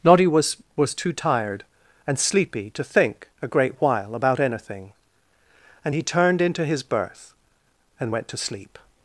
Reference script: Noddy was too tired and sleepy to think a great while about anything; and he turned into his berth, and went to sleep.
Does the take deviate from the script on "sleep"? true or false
false